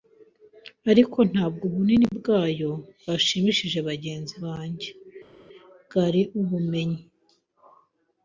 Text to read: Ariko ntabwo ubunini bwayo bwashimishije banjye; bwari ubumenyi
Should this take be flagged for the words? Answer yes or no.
yes